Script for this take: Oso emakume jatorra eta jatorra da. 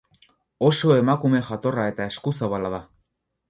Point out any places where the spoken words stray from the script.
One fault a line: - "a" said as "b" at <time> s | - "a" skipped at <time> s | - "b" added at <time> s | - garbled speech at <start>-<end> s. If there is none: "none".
- "jatorra" said as "eskuzabala" at 2.1 s